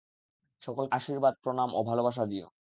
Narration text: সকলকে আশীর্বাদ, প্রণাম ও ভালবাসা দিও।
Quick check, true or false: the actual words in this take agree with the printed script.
true